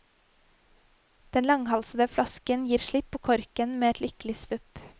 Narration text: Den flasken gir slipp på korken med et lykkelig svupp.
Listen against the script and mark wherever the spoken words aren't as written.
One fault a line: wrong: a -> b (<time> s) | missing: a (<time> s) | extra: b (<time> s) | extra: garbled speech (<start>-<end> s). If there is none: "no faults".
extra: langhalsede (1.5 s)